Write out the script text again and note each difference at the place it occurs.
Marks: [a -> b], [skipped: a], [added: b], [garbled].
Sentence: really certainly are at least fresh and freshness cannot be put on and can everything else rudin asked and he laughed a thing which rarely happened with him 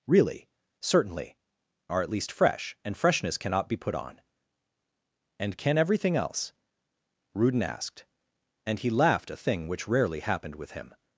really certainly are at least fresh and freshness cannot be put on and can everything else rudin asked and he laughed a thing which rarely happened with him